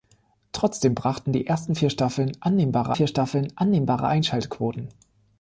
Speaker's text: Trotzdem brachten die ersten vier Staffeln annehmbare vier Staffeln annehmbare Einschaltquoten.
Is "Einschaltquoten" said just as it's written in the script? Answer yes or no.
yes